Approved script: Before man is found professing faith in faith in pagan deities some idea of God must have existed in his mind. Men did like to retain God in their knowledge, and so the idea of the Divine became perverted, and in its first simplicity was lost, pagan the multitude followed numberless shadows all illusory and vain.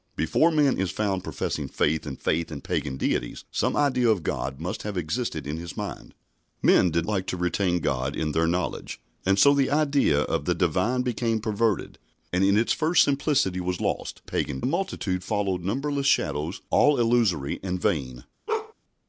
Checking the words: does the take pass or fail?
pass